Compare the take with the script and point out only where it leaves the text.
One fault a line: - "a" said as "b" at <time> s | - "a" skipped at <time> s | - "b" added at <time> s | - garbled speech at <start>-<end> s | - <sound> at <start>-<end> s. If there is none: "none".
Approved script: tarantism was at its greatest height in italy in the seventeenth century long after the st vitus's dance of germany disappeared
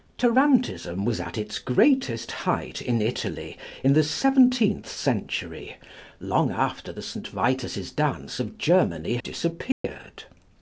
- dropout at 9.7-9.8 s